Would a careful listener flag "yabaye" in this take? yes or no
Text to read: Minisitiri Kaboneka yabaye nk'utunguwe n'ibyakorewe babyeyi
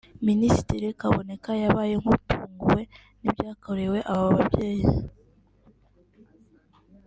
no